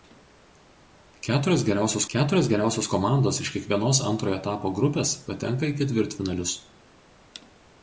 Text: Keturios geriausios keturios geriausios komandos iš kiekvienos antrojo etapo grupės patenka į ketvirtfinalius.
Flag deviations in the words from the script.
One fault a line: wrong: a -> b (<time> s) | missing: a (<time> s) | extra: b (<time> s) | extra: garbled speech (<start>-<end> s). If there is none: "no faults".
no faults